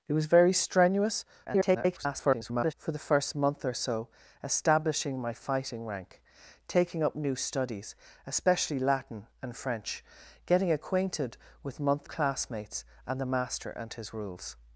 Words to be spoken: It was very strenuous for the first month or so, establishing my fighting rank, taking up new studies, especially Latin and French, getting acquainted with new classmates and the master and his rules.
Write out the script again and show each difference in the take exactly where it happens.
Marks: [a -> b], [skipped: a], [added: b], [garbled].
It was very strenuous [garbled] for the first month or so, establishing my fighting rank, taking up new studies, especially Latin and French, getting acquainted with [new -> month] classmates and the master and his rules.